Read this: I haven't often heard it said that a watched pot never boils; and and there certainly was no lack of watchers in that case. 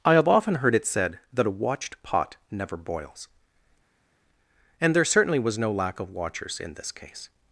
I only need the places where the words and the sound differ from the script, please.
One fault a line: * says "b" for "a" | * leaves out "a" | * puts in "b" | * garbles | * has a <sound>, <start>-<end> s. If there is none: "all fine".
* says "have" for "haven't"
* leaves out "and"
* says "this" for "that"